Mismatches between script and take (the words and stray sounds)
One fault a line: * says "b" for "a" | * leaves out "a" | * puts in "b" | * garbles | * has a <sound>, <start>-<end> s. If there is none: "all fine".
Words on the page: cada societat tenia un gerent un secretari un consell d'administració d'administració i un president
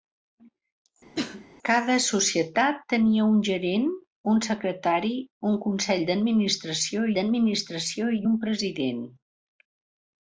* has a cough, 1.2-1.5 s